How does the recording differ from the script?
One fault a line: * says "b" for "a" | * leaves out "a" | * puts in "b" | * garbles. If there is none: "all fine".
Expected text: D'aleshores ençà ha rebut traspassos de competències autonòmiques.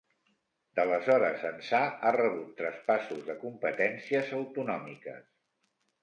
all fine